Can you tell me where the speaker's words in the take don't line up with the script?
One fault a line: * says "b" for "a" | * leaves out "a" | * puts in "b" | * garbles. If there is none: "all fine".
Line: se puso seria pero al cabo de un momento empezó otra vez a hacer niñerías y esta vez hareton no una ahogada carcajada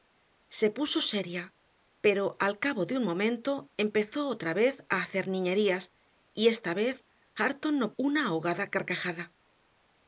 all fine